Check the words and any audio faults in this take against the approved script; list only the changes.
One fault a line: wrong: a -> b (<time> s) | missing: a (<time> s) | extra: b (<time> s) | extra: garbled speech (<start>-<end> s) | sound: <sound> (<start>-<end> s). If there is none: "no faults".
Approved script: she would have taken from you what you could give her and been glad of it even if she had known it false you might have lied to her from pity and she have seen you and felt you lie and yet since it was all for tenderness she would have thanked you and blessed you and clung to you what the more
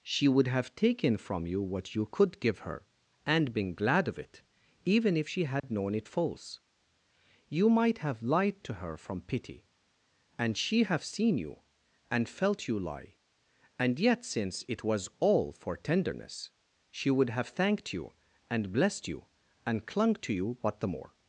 sound: dropout (5.6-5.6 s)